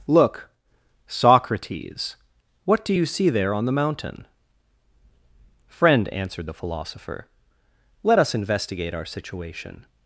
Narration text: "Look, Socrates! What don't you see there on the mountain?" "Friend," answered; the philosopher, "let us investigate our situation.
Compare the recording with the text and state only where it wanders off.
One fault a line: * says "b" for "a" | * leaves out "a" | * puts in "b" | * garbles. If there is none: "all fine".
* says "do" for "don't"